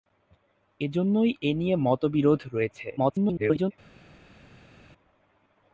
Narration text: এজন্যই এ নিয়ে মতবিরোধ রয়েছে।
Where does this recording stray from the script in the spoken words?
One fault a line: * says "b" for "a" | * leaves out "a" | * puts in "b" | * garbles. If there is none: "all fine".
* garbles